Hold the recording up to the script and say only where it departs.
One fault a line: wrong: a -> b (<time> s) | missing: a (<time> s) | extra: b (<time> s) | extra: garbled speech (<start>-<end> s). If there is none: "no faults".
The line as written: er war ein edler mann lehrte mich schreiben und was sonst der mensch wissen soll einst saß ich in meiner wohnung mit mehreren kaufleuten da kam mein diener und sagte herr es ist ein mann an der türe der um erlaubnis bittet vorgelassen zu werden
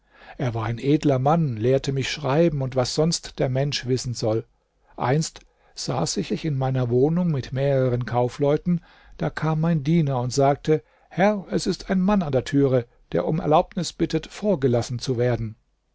extra: ich (6.3 s)